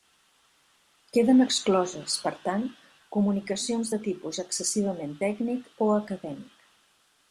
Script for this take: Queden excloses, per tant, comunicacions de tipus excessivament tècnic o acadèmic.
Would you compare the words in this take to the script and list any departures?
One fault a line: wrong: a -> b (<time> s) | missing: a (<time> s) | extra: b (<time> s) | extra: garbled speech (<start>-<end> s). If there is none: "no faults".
no faults